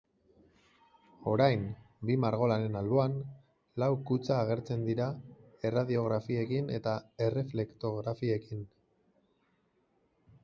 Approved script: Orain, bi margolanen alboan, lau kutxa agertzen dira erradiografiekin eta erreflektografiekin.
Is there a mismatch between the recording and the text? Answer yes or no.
no